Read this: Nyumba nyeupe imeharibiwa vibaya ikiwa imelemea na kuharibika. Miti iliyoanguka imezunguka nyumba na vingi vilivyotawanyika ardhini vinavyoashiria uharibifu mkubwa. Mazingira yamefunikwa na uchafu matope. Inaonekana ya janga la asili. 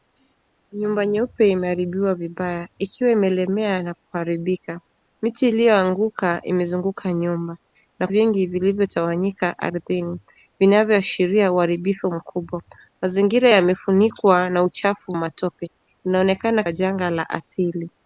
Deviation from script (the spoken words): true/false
false